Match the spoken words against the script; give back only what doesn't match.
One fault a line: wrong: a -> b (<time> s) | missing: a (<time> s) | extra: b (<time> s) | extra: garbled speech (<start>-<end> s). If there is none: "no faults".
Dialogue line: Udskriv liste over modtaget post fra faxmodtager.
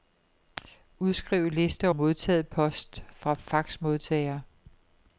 missing: over (1.9 s)